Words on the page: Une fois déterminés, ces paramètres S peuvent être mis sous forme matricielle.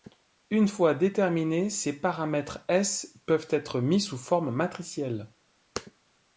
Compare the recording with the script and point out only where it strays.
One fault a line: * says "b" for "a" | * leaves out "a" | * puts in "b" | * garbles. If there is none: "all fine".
all fine